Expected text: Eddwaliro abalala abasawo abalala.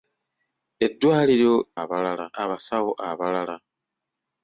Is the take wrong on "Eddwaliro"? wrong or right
right